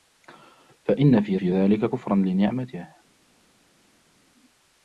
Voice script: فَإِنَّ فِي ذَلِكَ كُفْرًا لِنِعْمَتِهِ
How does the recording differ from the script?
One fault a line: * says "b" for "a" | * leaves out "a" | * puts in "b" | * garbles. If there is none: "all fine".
* puts in "فِي"